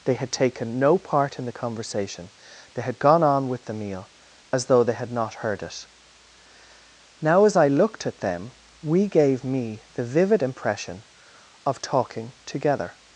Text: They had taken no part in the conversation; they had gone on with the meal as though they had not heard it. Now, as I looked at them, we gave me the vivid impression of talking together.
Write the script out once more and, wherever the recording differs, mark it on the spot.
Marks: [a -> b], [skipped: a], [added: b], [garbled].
They had taken no part in the conversation; they had gone on with the meal as though they had not heard it. Now, as I looked at them, we gave me the vivid impression of talking together.